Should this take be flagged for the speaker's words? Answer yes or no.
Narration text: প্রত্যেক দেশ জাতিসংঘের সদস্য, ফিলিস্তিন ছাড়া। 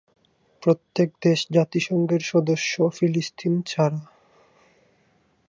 no